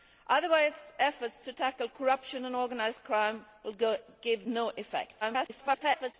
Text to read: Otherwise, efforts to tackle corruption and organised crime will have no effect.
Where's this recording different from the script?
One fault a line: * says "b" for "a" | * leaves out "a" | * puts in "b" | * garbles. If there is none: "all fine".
* garbles